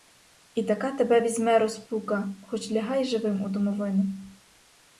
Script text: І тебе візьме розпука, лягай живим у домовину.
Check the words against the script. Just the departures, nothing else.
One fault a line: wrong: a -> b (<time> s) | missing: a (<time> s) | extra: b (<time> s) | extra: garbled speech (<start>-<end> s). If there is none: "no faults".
extra: така (0.6 s)
extra: хоч (2.4 s)